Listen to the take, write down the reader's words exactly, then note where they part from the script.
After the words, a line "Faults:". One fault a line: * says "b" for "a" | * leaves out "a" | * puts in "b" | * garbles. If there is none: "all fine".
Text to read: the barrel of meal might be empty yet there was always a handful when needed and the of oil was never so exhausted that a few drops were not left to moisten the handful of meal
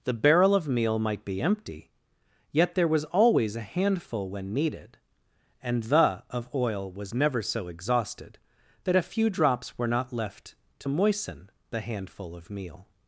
the barrel of meal might be empty yet there was always a handful when needed and the of oil was never so exhausted that a few drops were not left to moisten the handful of meal
Faults:
all fine